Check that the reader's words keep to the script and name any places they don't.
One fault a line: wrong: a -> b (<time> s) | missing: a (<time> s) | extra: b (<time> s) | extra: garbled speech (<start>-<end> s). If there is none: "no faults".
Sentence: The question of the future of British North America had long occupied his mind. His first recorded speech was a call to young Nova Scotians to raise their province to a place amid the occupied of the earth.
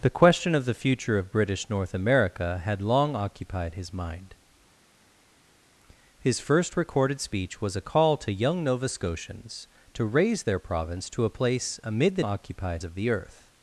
no faults